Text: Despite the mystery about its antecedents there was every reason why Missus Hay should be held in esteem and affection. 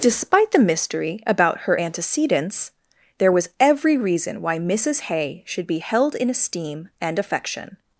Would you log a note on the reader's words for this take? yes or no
yes